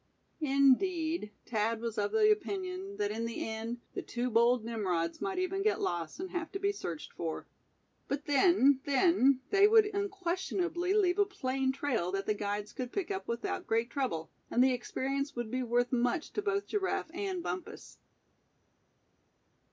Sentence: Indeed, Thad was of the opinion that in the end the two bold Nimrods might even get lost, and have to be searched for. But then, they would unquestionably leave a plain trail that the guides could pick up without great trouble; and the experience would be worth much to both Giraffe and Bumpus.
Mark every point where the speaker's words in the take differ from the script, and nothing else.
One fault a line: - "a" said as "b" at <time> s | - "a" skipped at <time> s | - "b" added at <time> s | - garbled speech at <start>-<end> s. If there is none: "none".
- "then" added at 8.8 s